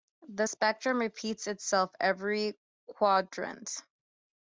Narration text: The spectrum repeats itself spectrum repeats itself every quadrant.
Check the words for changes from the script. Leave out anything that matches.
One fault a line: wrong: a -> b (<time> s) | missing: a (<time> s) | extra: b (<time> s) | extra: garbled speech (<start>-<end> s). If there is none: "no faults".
missing: spectrum repeats itself (1.9 s)